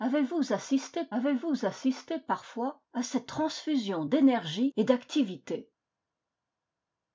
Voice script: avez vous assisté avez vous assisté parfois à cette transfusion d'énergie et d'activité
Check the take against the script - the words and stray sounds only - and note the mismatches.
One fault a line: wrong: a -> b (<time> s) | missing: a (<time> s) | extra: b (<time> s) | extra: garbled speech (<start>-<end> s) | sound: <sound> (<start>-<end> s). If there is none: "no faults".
no faults